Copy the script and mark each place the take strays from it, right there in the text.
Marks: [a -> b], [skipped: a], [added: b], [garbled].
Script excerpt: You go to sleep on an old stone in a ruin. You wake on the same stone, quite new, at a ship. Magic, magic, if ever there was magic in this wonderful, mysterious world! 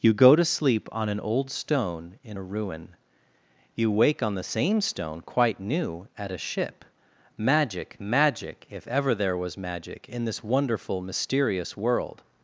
You go to sleep on an old stone in a ruin. You wake on the same stone, quite new, at a ship. Magic, magic, if ever there was magic in this wonderful, mysterious world!